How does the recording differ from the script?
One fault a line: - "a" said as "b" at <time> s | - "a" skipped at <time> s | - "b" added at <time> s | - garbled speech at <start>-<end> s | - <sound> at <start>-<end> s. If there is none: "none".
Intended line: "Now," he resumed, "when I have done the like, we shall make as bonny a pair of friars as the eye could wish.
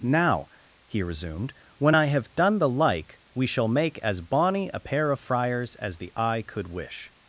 none